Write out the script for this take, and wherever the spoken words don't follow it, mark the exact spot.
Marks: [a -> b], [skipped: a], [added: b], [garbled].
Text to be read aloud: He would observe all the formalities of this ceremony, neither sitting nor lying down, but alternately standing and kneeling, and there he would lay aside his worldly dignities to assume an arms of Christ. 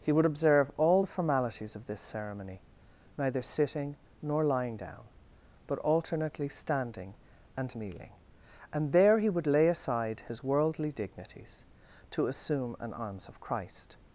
He would observe all the formalities of this ceremony, neither sitting nor lying down, but alternately standing and kneeling, and there he would lay aside his worldly dignities to assume an arms of Christ.